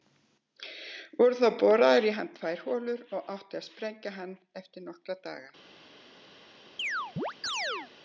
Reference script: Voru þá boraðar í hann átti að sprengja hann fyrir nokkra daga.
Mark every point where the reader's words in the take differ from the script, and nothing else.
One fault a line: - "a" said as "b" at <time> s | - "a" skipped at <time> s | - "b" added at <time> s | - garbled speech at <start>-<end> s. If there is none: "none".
- "tvær holur og" added at 2.4 s
- "fyrir" said as "eftir" at 4.6 s